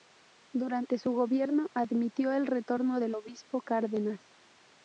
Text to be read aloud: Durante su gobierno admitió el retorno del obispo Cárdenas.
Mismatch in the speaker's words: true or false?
false